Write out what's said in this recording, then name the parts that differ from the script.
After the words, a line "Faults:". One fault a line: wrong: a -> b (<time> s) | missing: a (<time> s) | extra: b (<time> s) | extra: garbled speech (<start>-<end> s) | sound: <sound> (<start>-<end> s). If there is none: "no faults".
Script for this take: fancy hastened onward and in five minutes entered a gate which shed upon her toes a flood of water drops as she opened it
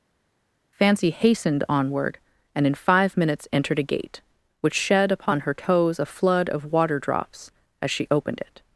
fancy hastened onward and in five minutes entered a gate which shed upon her toes a flood of water drops as she opened it
Faults:
no faults